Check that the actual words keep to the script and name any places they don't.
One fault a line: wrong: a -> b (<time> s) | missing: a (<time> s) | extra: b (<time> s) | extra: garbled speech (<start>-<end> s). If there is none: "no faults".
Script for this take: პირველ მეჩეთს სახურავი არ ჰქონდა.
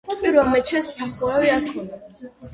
no faults